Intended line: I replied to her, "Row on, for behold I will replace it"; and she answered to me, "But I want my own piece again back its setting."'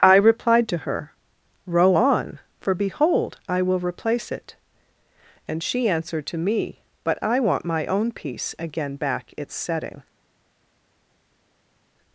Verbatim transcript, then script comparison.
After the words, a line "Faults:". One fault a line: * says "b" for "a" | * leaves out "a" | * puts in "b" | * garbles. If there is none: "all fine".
I replied to her, "Row on, for behold I will replace it"; and she answered to me, "But I want my own piece again back its setting."'
Faults:
all fine